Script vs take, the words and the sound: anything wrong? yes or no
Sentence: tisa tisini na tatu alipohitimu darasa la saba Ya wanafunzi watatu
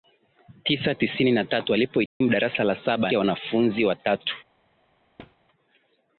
yes